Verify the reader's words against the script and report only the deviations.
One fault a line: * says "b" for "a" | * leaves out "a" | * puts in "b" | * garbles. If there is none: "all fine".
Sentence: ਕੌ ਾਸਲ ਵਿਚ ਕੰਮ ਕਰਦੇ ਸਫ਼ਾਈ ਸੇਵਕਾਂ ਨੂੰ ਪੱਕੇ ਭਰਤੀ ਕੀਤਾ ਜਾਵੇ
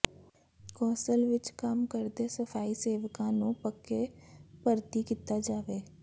all fine